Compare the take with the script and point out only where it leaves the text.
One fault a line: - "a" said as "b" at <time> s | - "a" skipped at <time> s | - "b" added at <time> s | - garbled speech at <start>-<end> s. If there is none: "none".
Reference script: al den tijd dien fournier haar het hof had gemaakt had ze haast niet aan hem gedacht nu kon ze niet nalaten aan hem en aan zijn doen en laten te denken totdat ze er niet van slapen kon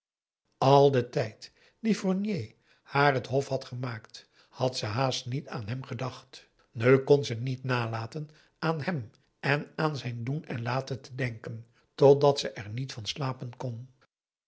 none